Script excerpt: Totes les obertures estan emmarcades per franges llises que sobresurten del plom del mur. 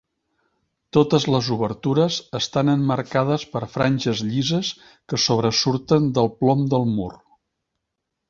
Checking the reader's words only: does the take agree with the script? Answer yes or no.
yes